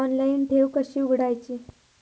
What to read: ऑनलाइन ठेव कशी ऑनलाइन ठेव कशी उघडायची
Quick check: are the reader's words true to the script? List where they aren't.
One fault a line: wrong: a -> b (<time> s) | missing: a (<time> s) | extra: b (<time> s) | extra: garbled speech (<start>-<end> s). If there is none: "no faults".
missing: ऑनलाइन ठेव कशी (1.0 s)